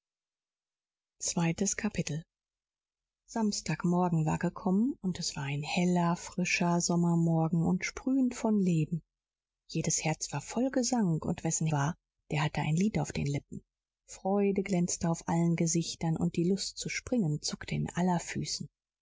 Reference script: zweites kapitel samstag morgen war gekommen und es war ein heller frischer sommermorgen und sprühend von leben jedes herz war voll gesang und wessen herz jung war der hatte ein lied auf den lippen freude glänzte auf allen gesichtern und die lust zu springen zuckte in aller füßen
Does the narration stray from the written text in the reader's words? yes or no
yes